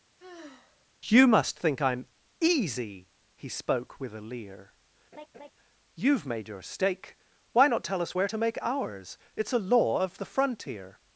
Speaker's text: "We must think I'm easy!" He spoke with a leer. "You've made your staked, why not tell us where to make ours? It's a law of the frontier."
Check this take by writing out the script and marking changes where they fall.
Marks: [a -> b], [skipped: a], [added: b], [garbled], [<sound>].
[sigh] ["We -> You] must think I'm easy!" He spoke with a leer. [laugh] "You've made your [staked, -> stake] why not tell us where to make ours? It's a law of the frontier."